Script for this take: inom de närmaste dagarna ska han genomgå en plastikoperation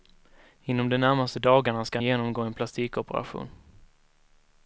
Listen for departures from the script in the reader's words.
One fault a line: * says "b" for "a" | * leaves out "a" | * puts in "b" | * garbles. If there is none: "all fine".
* leaves out "han"